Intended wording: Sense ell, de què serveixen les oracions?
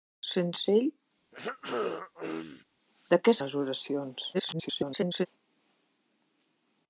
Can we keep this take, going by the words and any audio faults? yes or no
no